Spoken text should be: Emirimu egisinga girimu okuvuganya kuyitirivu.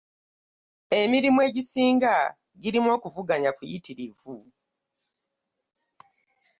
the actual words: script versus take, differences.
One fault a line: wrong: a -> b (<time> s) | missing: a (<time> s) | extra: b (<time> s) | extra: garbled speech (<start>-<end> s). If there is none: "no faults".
no faults